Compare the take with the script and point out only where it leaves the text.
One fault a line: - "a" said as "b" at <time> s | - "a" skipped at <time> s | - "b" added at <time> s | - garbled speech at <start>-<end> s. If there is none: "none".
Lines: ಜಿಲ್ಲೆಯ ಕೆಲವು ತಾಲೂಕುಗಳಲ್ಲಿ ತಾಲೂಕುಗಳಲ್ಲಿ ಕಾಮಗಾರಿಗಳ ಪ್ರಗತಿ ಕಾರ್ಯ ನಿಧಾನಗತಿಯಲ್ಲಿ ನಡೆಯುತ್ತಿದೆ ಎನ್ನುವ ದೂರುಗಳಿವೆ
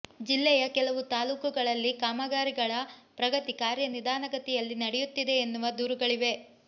- "ತಾಲೂಕುಗಳಲ್ಲಿ" skipped at 1.9 s